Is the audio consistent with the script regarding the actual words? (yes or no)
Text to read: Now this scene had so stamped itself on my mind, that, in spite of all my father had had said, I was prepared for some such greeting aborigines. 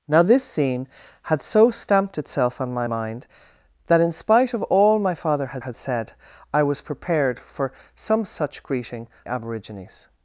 yes